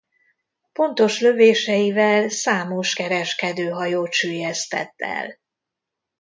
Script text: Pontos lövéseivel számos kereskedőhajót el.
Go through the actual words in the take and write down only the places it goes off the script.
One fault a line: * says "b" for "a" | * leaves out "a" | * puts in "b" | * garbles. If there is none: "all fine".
* puts in "süllyesztett"